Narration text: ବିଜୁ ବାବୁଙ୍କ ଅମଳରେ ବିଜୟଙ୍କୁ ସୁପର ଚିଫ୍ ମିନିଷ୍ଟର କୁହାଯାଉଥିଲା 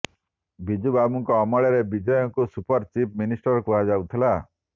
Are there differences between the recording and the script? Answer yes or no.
no